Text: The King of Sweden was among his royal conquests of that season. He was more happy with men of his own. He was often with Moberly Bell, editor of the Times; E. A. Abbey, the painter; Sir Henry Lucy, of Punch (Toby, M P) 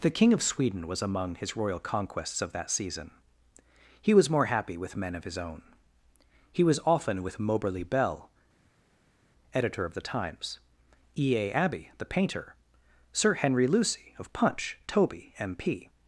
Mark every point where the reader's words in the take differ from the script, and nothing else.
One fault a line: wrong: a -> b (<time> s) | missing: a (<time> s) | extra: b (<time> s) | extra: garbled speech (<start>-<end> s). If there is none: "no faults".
no faults